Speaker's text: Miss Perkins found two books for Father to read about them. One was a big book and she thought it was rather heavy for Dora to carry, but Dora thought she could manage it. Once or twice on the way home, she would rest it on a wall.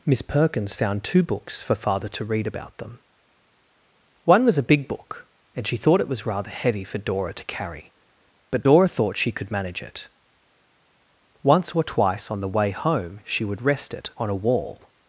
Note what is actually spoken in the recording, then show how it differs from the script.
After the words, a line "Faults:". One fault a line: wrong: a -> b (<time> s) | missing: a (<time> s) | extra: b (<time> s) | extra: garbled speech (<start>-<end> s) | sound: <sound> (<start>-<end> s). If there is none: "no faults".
Miss Perkins found two books for Father to read about them. One was a big book and she thought it was rather heavy for Dora to carry, but Dora thought she could manage it. Once or twice on the way home, she would rest it on a wall.
Faults:
no faults